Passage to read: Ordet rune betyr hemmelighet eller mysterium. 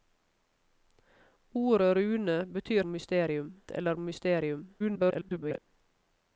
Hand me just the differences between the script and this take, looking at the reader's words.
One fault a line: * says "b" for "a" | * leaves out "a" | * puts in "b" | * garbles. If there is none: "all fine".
* says "mysterium" for "hemmelighet"
* garbles